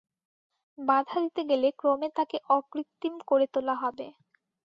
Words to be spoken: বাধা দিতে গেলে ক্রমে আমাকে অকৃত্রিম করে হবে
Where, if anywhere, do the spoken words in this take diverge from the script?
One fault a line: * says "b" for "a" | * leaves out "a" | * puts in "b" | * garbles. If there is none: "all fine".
* says "তাকে" for "আমাকে"
* puts in "তোলা"